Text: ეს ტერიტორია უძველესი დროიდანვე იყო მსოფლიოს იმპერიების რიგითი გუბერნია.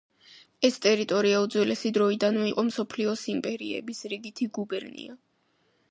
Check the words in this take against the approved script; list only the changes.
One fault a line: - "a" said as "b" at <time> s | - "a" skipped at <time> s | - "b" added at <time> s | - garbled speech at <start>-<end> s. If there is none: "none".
none